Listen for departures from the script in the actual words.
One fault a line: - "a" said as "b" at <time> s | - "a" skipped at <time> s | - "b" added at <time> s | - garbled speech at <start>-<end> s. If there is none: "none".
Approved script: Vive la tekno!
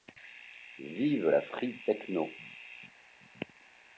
- "free" added at 1.5 s